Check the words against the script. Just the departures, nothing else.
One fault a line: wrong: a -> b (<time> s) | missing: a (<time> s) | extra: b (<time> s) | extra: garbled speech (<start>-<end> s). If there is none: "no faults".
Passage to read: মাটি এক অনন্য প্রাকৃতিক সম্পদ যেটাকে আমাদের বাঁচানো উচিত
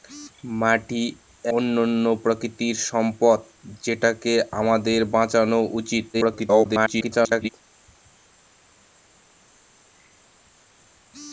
missing: এক (1.0 s)
extra: garbled speech (6.1-7.5 s)